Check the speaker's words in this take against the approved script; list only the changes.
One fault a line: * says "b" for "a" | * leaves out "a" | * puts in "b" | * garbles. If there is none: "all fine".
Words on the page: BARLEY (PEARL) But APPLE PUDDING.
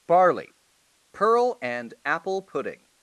* says "AND" for "But"